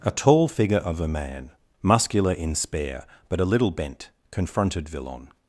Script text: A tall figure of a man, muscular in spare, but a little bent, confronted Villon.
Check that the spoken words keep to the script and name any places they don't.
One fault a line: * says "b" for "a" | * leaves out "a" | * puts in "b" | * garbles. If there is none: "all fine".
all fine